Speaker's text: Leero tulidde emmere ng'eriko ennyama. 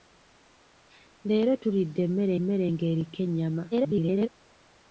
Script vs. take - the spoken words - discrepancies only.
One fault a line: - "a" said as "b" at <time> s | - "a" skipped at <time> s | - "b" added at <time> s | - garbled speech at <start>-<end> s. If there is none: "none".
- "emmere" added at 2.4 s
- garbled speech at 3.7-4.3 s